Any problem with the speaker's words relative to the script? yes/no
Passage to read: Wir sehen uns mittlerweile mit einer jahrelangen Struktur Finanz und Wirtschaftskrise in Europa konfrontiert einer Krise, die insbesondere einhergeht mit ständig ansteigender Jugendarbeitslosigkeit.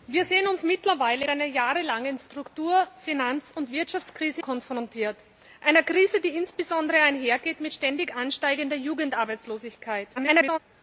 yes